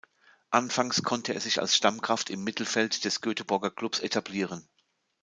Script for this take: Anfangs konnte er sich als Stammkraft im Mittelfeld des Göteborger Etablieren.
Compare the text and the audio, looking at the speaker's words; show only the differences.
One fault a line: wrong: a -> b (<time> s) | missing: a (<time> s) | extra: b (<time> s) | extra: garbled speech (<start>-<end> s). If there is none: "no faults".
extra: Klubs (3.7 s)